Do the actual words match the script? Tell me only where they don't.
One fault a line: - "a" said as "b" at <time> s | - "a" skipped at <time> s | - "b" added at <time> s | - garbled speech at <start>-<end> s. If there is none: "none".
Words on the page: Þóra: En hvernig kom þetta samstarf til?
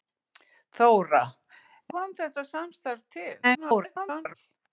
- "En hvernig" skipped at 1.2 s
- garbled speech at 3.4-4.3 s